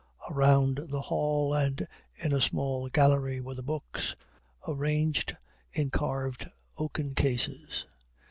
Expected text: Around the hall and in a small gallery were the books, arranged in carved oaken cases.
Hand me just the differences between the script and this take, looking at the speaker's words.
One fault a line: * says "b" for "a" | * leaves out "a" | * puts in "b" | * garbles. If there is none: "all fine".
all fine